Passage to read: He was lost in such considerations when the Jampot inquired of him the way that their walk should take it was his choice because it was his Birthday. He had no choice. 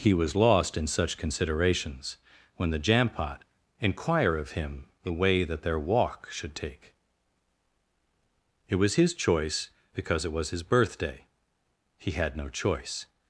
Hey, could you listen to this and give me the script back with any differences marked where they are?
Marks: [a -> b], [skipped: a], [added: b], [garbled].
He was lost in such considerations when the Jampot [inquired -> inquire] of him the way that their walk should take it was his choice because it was his Birthday. He had no choice.